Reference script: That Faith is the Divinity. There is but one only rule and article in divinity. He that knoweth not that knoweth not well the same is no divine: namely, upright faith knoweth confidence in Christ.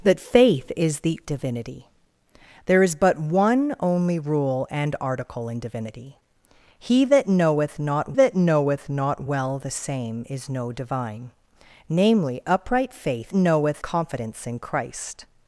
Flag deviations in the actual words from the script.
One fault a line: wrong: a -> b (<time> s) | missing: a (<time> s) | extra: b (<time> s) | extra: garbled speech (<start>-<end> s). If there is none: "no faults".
no faults